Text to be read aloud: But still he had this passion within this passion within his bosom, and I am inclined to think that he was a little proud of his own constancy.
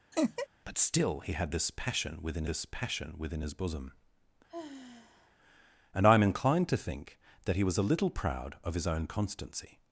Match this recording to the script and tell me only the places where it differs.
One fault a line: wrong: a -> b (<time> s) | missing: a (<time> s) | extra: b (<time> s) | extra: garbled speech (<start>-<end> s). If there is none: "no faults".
no faults